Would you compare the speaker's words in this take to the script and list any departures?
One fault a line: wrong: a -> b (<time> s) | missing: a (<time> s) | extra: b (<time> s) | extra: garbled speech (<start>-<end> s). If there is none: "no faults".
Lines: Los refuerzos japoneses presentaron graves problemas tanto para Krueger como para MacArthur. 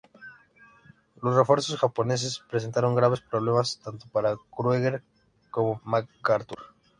missing: para (5.8 s)